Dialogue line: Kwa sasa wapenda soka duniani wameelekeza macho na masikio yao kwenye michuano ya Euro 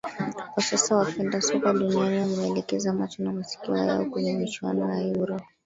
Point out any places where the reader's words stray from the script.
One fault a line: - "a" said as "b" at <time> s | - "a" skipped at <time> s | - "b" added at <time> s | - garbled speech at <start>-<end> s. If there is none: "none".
none